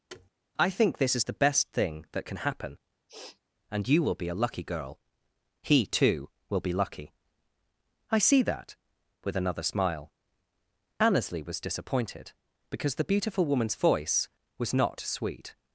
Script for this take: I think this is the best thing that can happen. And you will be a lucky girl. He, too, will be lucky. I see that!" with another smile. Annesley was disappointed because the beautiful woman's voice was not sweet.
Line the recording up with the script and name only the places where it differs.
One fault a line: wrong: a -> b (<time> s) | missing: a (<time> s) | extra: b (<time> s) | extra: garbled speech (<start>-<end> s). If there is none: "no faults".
no faults